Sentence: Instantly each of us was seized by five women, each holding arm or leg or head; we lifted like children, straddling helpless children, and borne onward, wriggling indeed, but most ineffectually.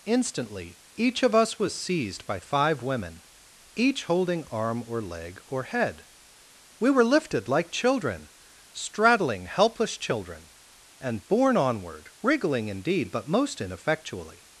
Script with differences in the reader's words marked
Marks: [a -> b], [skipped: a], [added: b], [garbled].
Instantly each of us was seized by five women, each holding arm or leg or head; we [added: were] lifted like children, straddling helpless children, and borne onward, wriggling indeed, but most ineffectually.